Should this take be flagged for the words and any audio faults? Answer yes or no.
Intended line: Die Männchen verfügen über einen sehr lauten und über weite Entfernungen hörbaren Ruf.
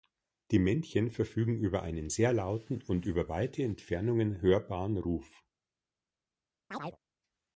yes